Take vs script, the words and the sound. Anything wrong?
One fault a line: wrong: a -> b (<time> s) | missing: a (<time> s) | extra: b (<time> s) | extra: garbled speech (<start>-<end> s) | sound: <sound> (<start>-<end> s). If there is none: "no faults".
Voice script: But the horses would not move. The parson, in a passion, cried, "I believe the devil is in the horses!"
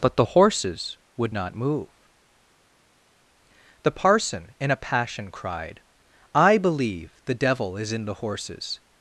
no faults